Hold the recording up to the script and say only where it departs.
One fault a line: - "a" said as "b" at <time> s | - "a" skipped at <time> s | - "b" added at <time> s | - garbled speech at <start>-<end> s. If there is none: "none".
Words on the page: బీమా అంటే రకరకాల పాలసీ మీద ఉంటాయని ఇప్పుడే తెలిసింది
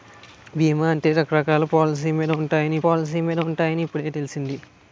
- "పాలసీ మీద ఉంటాయని" added at 2.8 s